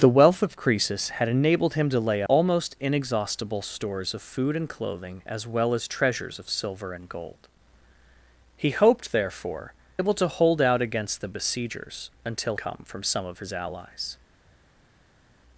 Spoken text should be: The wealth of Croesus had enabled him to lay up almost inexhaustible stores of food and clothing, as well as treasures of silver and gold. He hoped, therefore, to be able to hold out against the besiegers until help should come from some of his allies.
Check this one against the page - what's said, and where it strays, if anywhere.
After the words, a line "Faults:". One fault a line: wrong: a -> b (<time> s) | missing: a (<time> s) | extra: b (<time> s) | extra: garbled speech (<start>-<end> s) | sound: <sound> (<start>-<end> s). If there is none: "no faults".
The wealth of Croesus had enabled him to lay almost inexhaustible stores of food and clothing, as well as treasures of silver and gold. He hoped, therefore, able to hold out against the besiegers until come from some of his allies.
Faults:
missing: up (2.2 s)
missing: to be (9.7 s)
missing: help should (12.6 s)